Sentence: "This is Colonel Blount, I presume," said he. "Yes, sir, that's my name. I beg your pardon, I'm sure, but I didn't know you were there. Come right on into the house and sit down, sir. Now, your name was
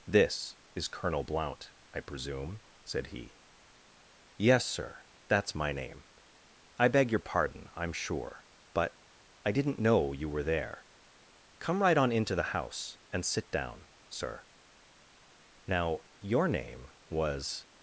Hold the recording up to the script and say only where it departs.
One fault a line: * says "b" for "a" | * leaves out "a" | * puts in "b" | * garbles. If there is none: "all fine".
all fine